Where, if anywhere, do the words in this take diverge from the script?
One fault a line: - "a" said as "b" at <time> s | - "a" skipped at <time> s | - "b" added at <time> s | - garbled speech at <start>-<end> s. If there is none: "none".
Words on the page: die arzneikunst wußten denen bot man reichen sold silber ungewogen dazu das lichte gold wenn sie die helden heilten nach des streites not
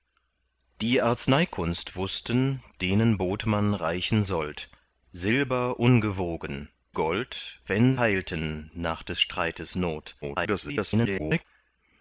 - "dazu das lichte" skipped at 6.7 s
- "sie die helden" skipped at 7.9 s
- garbled speech at 10.2-11.4 s